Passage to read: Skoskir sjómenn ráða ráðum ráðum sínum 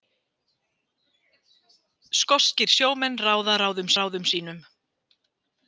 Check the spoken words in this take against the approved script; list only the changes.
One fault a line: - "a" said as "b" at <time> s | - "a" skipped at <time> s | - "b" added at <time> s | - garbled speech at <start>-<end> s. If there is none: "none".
none